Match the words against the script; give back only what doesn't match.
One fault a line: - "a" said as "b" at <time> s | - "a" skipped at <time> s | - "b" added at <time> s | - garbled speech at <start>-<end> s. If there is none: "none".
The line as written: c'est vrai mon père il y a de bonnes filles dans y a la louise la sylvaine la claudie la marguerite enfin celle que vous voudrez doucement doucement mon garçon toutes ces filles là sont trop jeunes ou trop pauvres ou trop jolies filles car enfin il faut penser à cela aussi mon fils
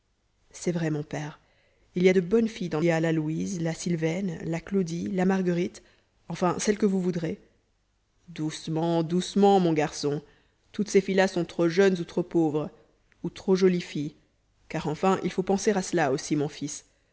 none